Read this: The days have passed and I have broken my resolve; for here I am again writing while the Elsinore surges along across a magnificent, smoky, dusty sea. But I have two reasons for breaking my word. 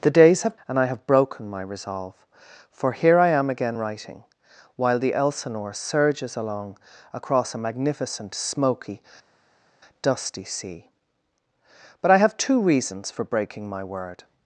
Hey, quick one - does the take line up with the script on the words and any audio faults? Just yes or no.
no